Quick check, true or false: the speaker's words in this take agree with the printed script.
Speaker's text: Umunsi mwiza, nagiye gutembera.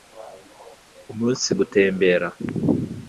false